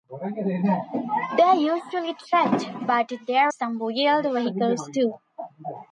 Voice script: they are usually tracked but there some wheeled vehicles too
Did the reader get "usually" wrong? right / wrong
right